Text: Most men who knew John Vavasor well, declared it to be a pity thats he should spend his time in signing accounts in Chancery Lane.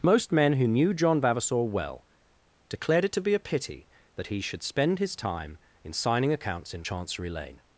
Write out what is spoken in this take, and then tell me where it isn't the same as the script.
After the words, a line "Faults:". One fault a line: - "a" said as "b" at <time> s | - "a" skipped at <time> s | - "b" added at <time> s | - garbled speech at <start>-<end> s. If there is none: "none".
Most men who knew John Vavasor well, declared it to be a pity that he should spend his time in signing accounts in Chancery Lane.
Faults:
- "thats" said as "that" at 4.2 s